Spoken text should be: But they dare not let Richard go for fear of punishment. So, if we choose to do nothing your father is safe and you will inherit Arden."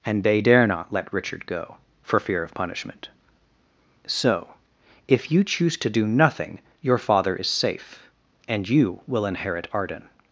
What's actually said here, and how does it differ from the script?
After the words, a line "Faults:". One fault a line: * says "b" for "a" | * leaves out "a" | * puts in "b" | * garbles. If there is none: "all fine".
And they dare not let Richard go for fear of punishment. So, if you choose to do nothing your father is safe and you will inherit Arden."
Faults:
* says "And" for "But"
* says "you" for "we"